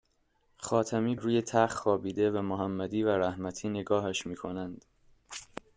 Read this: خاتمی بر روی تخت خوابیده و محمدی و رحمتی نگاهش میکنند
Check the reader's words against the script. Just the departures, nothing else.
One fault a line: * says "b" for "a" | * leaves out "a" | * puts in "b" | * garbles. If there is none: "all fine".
* leaves out "بر"